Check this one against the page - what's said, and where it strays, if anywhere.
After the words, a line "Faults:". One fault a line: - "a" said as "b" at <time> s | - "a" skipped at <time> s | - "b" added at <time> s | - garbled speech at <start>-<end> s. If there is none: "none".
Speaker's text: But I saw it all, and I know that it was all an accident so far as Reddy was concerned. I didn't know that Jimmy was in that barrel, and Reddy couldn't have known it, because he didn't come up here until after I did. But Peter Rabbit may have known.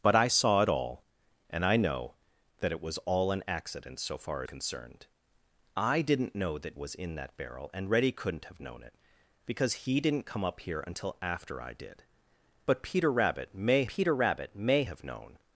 But I saw it all, and I know that it was all an accident so far concerned. I didn't know that Was in that barrel, and Reddy couldn't have known it, because he didn't come up here until after I did. But Peter Rabbit may Peter Rabbit may have known.
Faults:
- "as Reddy was" skipped at 4.4 s
- "Jimmy" skipped at 6.8 s
- "Peter Rabbit may" added at 13.9 s